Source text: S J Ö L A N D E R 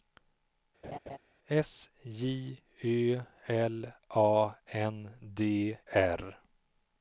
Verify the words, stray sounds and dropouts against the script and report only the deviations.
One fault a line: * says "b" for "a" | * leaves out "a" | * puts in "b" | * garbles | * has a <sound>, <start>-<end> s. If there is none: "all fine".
* has a laugh, 0.8-1.2 s
* leaves out "E"